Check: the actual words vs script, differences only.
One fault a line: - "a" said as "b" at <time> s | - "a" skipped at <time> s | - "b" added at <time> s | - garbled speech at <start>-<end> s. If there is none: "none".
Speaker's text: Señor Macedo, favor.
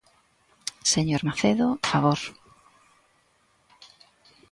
none